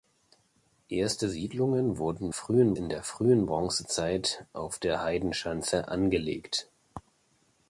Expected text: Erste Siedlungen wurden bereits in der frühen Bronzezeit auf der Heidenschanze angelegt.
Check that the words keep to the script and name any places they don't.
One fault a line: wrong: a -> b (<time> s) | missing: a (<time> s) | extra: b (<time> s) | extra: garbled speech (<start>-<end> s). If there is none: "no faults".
wrong: bereits -> frühen (2.3 s)